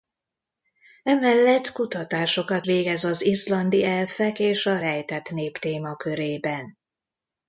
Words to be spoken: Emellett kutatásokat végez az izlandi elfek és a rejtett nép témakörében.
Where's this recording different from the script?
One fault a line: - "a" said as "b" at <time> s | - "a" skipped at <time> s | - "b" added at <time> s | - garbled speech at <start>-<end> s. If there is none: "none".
none